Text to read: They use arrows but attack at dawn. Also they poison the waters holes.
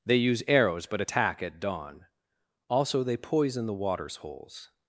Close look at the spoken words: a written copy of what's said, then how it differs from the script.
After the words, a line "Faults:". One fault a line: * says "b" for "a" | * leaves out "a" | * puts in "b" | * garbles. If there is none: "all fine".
They use arrows but attack at dawn. Also they poison the waters holes.
Faults:
all fine